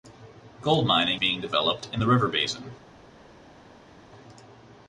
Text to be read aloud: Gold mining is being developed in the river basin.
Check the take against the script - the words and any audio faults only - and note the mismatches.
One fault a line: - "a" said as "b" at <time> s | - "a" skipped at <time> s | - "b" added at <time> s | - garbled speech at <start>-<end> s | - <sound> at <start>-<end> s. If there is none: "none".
- "is" skipped at 1.2 s